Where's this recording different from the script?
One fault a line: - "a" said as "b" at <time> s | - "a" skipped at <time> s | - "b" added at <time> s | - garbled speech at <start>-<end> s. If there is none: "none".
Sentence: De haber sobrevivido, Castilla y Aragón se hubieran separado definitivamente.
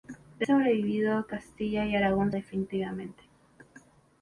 - "haber" skipped at 0.5 s
- "se hubieran separado" skipped at 2.3 s